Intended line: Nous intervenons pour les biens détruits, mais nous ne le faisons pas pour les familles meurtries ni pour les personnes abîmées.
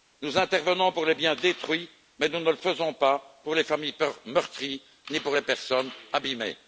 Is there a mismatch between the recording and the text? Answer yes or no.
no